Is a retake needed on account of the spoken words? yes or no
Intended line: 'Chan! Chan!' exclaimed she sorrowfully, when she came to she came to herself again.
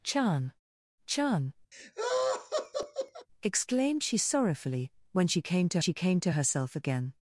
no